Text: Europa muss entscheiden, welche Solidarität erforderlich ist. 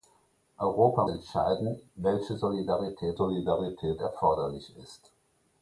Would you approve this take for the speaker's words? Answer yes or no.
no